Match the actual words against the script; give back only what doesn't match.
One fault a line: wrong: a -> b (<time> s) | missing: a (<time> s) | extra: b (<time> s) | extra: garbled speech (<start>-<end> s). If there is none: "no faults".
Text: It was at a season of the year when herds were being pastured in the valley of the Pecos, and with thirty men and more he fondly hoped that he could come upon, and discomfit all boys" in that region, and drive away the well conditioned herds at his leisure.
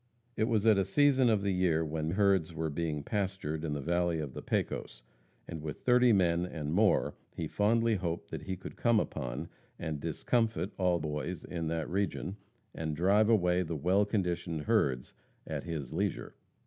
no faults